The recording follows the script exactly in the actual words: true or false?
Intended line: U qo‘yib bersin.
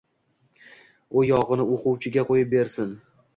false